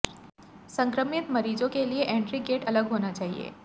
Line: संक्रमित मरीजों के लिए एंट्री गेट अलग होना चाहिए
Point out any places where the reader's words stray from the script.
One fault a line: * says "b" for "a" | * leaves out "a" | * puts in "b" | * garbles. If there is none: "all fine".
all fine